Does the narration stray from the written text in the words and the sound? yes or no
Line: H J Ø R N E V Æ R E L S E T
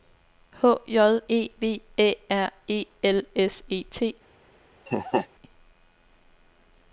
yes